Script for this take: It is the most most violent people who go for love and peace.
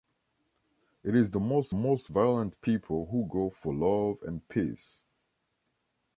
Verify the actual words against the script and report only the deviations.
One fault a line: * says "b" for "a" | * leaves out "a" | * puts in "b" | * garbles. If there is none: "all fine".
all fine